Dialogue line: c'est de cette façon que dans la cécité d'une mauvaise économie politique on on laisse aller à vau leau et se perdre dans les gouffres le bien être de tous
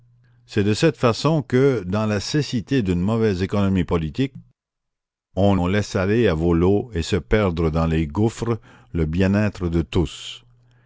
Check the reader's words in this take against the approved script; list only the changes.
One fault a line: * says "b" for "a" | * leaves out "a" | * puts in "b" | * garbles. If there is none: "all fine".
all fine